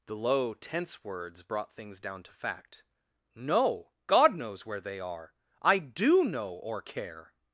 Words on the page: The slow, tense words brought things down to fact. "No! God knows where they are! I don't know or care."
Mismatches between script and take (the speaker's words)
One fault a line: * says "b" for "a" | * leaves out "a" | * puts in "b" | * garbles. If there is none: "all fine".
* says "low" for "slow"
* says "do" for "don't"